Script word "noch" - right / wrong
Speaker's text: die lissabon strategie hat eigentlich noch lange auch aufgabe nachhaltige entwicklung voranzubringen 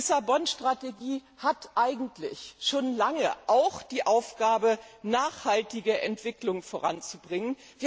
wrong